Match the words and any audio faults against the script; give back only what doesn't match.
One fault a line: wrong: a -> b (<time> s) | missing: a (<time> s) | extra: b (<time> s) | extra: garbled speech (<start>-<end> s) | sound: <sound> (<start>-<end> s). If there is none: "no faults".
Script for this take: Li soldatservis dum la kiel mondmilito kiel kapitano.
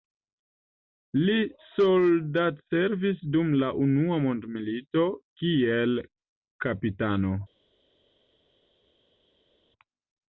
wrong: kiel -> unua (3.9 s)